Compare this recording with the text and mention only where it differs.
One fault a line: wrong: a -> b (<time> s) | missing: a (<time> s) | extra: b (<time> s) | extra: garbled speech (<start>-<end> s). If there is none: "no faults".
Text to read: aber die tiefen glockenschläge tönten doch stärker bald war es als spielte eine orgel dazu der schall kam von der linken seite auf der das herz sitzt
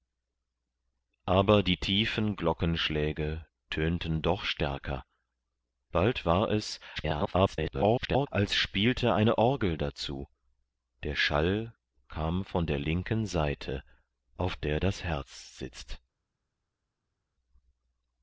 extra: garbled speech (7.0-8.3 s)